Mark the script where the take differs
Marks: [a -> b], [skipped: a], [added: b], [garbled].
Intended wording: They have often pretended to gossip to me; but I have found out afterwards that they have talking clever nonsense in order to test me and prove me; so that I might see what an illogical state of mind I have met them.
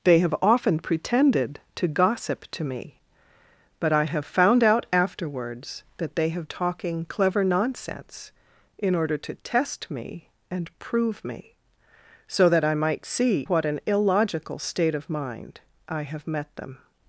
They have often pretended to gossip to me; but I have found out afterwards that they have talking clever nonsense in order to test me and prove me; so that I might see what an illogical state of mind I have met them.